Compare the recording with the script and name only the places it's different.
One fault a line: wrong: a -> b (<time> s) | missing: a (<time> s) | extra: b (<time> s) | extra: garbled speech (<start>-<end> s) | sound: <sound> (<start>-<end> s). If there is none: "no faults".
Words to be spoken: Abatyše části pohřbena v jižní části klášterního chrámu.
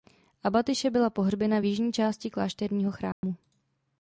wrong: části -> byla (0.9 s)
sound: dropout (3.1-3.2 s)